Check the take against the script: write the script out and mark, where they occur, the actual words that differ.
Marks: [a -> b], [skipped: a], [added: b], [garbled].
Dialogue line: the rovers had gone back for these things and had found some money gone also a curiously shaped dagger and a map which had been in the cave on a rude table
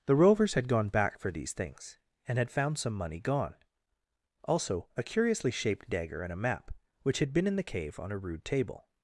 the rovers had gone back for these things and had found some money gone also a curiously shaped dagger and a map which had been in the cave on a rude table